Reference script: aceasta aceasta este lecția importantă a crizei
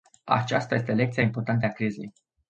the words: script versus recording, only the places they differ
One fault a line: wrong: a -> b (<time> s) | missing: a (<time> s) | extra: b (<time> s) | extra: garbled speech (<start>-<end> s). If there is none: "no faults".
missing: aceasta (0.8 s)